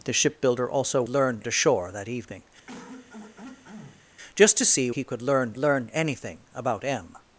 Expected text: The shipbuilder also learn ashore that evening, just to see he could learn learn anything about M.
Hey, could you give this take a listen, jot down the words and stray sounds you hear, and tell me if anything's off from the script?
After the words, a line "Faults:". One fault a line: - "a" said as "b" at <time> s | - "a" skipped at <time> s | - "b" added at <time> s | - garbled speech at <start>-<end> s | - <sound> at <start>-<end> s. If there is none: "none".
The shipbuilder also learn ashore that evening, just to see he could learn learn anything about M.
Faults:
- throat clearing at 2.7-4.1 s